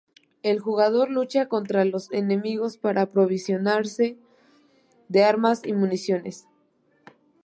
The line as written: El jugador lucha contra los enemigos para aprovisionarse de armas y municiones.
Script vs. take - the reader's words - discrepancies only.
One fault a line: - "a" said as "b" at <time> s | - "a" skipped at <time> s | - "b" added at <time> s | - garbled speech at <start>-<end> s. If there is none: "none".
none